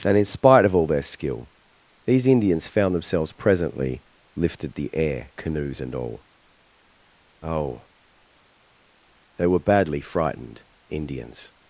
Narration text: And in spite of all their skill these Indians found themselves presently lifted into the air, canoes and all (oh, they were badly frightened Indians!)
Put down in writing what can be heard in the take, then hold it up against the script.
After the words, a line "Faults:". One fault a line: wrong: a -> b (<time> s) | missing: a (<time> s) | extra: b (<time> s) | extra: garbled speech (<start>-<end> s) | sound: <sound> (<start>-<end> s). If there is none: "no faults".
And in spite of all their skill these Indians found themselves presently lifted the air, canoes and all (oh, they were badly frightened Indians!)
Faults:
missing: into (4.7 s)